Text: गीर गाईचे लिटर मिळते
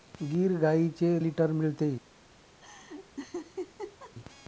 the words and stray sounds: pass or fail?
fail